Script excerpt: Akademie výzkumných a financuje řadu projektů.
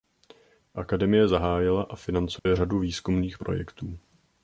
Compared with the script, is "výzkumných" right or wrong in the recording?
wrong